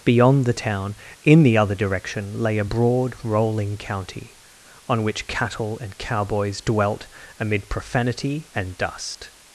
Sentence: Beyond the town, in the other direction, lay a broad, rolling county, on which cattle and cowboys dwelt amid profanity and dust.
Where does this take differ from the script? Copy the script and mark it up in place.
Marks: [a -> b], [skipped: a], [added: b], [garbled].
Beyond the town, in the other direction, lay a broad, rolling county, on which cattle and cowboys dwelt amid profanity and dust.